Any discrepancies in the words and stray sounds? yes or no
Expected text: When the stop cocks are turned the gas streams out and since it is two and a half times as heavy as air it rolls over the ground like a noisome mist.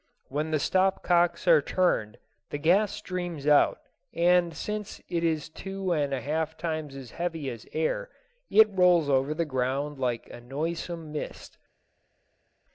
no